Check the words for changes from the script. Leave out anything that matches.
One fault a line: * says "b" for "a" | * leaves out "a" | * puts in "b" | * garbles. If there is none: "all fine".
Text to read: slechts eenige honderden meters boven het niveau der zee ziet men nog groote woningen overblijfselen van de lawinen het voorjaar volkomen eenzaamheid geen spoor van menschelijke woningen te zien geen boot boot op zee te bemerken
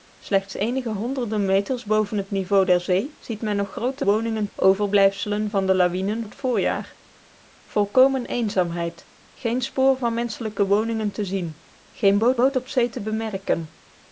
all fine